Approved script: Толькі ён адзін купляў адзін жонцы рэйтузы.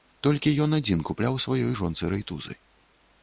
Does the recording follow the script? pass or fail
fail